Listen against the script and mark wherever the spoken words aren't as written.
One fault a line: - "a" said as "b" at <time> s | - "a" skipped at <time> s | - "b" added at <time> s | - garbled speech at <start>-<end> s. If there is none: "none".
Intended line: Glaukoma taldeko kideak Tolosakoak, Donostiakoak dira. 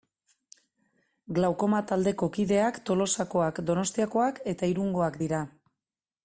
- "eta Irungoak" added at 4.5 s